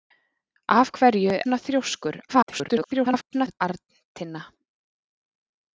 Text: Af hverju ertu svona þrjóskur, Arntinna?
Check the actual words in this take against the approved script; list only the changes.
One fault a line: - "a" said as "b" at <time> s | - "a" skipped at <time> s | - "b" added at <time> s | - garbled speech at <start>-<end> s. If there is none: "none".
- "ertu" skipped at 1.3 s
- garbled speech at 2.3-3.6 s